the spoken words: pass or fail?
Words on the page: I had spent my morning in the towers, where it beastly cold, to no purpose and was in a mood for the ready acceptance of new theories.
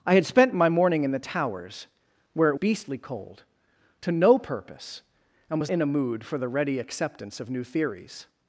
pass